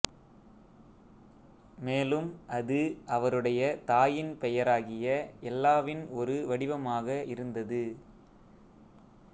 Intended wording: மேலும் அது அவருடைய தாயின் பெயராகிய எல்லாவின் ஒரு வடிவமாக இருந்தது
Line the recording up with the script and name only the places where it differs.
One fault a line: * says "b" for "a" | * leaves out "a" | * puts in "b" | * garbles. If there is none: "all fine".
all fine